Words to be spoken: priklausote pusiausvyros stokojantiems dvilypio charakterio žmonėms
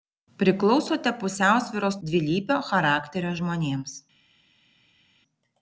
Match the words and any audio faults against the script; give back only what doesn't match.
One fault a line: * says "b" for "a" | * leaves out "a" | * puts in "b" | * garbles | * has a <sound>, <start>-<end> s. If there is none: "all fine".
* leaves out "stokojantiems"